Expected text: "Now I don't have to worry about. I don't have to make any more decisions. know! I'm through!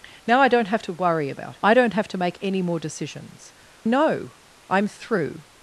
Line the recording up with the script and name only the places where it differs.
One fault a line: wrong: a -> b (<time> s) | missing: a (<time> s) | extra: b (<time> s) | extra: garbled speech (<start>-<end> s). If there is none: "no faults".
no faults